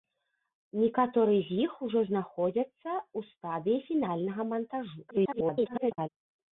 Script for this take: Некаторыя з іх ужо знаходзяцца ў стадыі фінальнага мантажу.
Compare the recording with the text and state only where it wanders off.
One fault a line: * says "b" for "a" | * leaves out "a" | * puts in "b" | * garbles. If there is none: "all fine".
* garbles